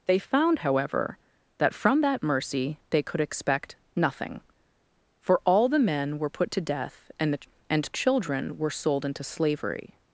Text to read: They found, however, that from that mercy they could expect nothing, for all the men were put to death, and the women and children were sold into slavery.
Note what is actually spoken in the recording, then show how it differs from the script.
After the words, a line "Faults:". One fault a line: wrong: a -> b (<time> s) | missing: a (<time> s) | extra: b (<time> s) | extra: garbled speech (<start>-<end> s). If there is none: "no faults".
They found, however, that from that mercy they could expect nothing, for all the men were put to death, and the and children were sold into slavery.
Faults:
missing: women (7.4 s)